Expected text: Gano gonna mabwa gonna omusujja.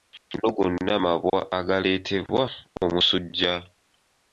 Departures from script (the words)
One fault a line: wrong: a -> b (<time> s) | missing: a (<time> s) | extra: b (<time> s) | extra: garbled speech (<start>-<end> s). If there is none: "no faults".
wrong: gonna -> agaleetebwa (1.6 s)